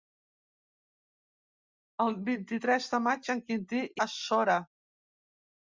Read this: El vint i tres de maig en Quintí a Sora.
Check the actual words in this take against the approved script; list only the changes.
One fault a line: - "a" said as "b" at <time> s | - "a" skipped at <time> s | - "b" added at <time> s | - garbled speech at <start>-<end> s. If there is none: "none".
none